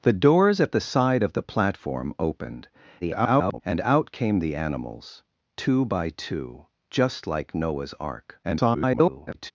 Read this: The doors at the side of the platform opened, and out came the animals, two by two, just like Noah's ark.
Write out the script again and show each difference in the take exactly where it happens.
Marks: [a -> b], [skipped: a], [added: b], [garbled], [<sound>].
The doors at the side of the platform opened, [garbled] and out came the animals, two by two, just like Noah's ark. [garbled]